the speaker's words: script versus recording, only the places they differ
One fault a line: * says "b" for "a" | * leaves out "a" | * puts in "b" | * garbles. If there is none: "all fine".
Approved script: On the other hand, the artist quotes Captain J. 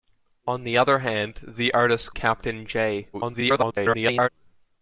* leaves out "quotes"
* garbles